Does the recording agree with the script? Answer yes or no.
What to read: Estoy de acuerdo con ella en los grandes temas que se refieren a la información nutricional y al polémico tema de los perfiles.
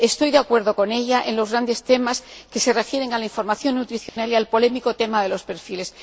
yes